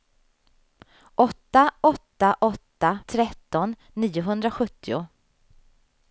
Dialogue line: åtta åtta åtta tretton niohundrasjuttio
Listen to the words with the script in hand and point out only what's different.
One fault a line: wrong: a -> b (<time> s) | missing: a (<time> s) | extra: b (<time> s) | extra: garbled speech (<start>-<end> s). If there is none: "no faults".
no faults